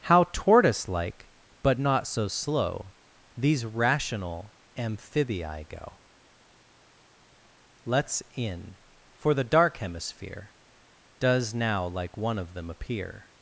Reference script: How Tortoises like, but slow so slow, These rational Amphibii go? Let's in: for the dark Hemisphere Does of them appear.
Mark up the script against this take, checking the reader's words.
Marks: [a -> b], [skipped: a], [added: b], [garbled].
How [Tortoises -> Tortoise] like, but [slow -> not] so slow, These rational Amphibii go? Let's in: for the dark Hemisphere Does [added: now like one] of them appear.